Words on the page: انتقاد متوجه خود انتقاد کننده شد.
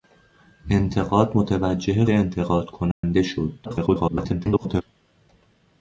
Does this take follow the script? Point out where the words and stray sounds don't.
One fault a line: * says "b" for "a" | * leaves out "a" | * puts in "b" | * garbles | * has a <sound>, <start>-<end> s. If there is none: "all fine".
* leaves out "خود"
* has a dropout, 2.9-3.0 s
* garbles